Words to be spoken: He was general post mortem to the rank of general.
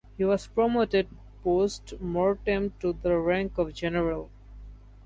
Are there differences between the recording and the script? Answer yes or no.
yes